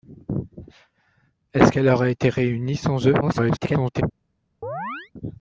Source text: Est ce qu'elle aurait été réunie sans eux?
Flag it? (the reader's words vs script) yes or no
yes